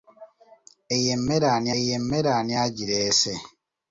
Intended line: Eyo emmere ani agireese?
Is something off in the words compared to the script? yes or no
yes